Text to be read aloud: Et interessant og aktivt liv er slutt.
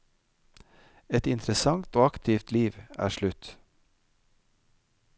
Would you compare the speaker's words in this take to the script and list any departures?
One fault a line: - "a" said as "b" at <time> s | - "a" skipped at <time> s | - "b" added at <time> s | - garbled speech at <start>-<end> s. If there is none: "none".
none